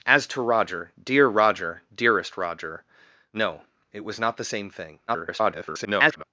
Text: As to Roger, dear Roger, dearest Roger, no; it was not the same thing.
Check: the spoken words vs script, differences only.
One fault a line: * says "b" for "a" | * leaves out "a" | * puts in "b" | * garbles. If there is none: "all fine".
* garbles